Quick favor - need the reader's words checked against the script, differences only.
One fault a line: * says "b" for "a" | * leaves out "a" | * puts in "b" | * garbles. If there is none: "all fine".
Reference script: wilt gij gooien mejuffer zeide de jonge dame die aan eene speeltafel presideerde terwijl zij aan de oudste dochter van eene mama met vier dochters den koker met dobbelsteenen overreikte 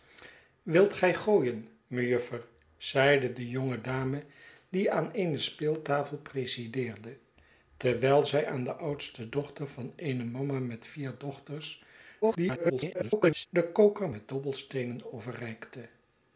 * garbles